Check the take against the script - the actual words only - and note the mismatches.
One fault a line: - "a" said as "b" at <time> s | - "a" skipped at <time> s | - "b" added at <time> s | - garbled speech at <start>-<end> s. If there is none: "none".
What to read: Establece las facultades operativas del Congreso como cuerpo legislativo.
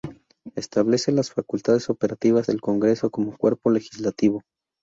none